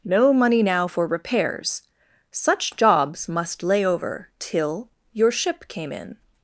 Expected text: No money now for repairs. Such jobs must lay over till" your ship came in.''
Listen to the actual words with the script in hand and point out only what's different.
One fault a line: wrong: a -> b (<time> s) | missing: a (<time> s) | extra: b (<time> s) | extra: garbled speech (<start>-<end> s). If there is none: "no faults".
no faults